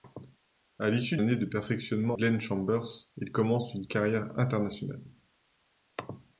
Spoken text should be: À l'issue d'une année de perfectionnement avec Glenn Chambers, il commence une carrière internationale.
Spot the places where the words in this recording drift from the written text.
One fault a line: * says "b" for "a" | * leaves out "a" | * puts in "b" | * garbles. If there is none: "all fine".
* leaves out "d'une"
* leaves out "avec"